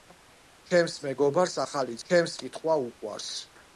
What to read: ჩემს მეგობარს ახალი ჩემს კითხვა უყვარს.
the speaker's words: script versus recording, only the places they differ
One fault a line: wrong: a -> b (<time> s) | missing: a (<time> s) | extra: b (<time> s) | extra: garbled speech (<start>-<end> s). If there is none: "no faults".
no faults